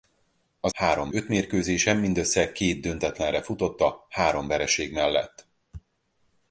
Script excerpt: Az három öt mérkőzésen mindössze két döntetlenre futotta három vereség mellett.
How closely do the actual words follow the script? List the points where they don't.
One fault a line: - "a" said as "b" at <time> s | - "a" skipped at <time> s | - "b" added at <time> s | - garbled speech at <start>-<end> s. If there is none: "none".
none